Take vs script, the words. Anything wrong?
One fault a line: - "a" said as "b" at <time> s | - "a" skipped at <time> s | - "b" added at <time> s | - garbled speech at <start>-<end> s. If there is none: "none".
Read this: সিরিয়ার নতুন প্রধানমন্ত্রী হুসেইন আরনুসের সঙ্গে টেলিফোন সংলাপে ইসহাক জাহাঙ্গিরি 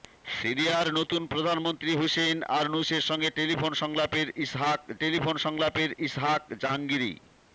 - "টেলিফোন সংলাপে ইসহাক" added at 5.0 s